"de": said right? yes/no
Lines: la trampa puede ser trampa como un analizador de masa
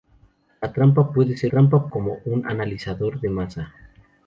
yes